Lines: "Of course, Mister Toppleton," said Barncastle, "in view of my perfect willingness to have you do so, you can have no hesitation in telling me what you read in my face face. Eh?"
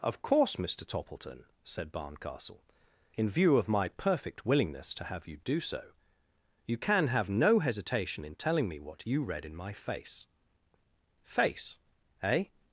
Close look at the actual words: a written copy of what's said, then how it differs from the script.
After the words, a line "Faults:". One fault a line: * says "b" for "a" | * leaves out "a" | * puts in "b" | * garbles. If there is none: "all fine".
"Of course, Mister Toppleton," said Barncastle, "in view of my perfect willingness to have you do so, you can have no hesitation in telling me what you read in my face face. Eh?"
Faults:
all fine